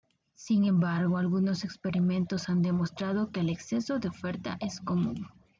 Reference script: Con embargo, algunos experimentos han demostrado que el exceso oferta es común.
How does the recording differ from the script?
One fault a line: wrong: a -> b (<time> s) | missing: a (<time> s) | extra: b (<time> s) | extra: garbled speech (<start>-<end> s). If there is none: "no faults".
wrong: Con -> Sin (0.3 s)
extra: de (4.0 s)